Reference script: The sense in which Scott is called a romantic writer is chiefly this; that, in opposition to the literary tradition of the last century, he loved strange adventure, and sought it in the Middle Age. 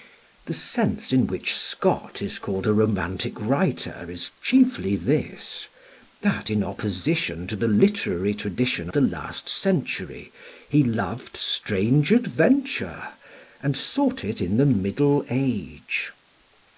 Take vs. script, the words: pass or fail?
fail